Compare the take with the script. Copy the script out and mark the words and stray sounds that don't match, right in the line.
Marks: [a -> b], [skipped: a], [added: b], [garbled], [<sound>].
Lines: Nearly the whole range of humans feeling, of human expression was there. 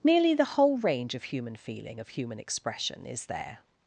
Nearly the whole range of [humans -> human] feeling, of human expression [was -> is] there.